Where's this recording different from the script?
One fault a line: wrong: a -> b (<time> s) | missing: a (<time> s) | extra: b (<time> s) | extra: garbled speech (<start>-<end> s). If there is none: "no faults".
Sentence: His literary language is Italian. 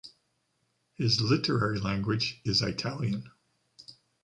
no faults